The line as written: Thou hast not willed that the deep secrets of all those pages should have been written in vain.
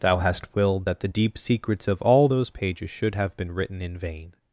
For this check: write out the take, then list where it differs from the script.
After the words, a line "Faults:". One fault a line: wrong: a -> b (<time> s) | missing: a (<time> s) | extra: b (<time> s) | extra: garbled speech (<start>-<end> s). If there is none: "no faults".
Thou hast willed that the deep secrets of all those pages should have been written in vain.
Faults:
missing: not (0.5 s)